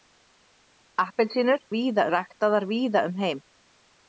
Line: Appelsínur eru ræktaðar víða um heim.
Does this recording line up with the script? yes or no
no